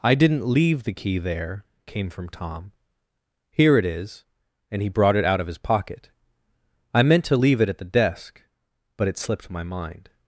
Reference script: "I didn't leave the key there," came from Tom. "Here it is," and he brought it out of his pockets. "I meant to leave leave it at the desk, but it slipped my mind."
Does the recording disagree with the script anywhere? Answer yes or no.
yes